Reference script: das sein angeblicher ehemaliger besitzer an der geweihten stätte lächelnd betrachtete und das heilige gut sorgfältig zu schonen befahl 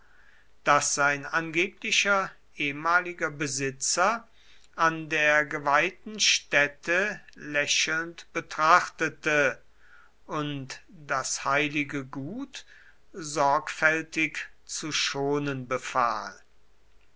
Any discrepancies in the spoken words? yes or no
no